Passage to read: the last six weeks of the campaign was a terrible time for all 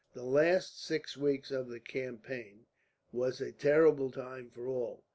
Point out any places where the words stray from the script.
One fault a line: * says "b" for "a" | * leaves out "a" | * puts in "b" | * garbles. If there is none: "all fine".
all fine